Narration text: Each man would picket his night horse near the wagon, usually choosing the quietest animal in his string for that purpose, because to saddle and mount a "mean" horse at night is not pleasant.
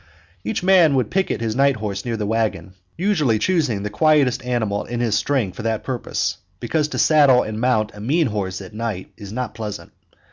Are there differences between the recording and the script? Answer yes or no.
no